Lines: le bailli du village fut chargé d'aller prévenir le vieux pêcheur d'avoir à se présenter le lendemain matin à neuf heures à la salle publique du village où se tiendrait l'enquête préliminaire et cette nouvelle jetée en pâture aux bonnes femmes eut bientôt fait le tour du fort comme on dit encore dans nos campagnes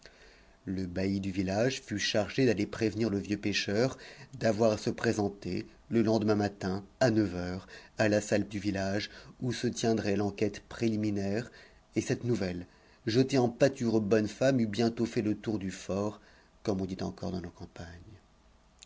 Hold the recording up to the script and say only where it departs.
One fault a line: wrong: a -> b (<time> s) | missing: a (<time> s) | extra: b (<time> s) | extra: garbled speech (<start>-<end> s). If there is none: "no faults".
missing: publique (8.5 s)